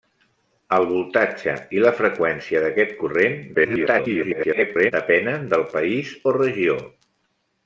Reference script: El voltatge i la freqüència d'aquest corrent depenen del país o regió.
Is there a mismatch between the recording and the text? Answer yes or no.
yes